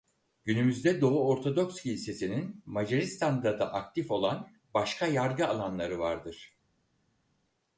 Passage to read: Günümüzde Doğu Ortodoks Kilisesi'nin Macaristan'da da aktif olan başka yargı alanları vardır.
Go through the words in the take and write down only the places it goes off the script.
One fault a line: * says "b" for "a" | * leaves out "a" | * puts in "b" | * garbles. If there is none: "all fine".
all fine